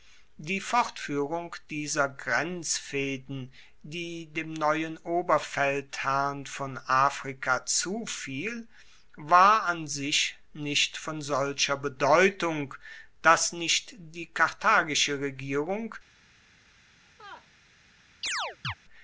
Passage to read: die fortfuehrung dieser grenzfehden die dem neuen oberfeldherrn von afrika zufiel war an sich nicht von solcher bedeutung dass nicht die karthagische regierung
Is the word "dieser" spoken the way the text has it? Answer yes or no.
yes